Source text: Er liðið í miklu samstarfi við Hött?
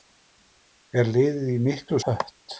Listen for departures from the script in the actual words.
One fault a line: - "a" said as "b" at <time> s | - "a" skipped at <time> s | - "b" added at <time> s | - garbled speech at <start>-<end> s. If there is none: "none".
- "samstarfi við" skipped at 2.0 s